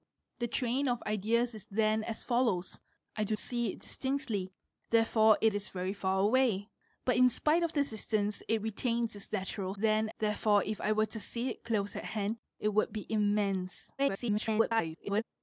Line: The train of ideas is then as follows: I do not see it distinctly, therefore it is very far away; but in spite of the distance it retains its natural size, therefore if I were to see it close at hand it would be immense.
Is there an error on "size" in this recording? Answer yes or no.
yes